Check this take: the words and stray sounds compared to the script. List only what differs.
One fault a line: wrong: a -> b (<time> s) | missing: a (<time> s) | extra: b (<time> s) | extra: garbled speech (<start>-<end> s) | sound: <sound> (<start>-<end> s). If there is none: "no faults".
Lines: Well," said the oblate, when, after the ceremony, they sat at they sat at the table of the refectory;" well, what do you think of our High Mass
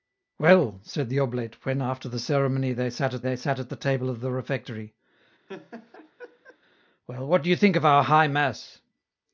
sound: laugh (5.5-6.6 s)